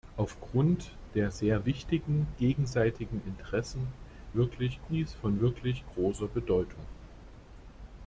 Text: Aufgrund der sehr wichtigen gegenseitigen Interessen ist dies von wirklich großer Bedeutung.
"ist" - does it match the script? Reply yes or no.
no